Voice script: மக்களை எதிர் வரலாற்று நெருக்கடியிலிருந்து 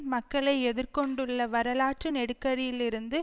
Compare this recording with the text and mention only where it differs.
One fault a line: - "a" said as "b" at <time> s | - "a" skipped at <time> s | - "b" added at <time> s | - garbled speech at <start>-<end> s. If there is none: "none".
- "கொண்டுள்ள" added at 0.9 s